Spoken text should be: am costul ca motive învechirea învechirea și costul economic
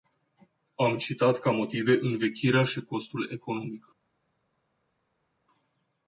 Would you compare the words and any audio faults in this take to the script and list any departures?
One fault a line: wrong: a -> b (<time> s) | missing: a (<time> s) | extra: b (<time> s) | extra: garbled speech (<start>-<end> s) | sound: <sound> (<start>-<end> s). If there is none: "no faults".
wrong: costul -> citat (1.0 s)
missing: învechirea (2.6 s)